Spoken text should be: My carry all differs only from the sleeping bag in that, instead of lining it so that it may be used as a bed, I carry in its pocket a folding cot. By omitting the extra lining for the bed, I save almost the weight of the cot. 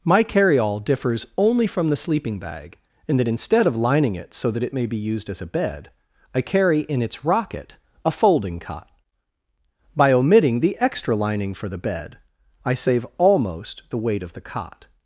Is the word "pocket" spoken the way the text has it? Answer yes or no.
no